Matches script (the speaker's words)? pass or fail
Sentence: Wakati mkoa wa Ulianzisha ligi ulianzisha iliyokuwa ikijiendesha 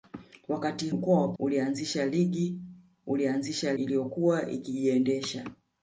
pass